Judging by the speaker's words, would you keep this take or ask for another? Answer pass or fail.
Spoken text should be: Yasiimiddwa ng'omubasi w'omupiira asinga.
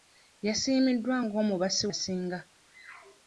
fail